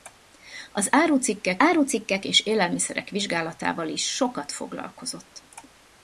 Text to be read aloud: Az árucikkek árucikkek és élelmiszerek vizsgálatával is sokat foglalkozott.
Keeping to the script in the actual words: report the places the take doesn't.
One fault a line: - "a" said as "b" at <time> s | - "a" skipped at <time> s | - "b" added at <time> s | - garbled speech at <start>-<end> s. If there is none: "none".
none